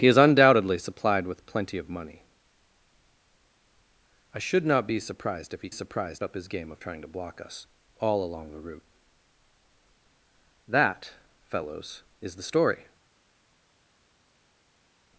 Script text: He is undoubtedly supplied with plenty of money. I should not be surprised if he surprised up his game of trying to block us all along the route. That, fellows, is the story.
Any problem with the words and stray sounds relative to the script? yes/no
no